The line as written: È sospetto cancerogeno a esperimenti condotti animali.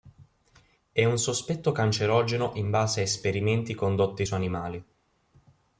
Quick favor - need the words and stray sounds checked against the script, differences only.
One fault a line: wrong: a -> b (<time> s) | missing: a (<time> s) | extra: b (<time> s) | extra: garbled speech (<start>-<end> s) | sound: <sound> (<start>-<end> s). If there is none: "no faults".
extra: un (1.1 s)
extra: in base (2.5 s)
extra: su (4.2 s)